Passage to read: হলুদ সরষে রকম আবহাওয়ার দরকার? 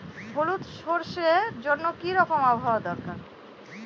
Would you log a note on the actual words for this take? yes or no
yes